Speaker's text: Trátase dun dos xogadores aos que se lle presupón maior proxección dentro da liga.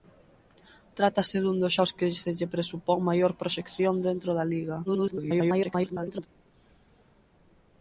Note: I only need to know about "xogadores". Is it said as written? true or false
false